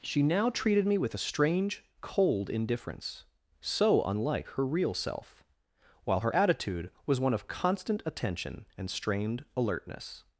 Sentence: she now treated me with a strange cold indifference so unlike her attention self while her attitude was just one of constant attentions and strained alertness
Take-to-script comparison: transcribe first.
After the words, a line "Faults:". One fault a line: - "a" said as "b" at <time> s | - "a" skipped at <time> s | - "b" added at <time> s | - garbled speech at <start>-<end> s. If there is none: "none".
she now treated me with a strange cold indifference so unlike her real self while her attitude was one of constant attention and strained alertness
Faults:
- "attention" said as "real" at 4.6 s
- "just" skipped at 7.2 s
- "attentions" said as "attention" at 8.1 s